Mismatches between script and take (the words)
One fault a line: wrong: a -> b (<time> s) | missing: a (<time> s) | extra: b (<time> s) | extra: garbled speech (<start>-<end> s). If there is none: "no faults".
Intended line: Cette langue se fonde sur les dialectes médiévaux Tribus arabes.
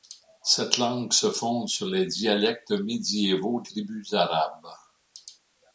no faults